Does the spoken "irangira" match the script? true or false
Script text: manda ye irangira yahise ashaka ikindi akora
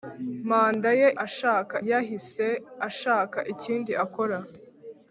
false